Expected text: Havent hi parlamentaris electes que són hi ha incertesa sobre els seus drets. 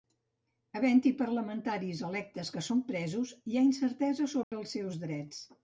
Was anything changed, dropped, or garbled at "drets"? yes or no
no